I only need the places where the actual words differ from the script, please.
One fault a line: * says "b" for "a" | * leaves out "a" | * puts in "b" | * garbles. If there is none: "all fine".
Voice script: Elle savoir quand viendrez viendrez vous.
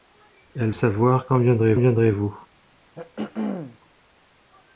all fine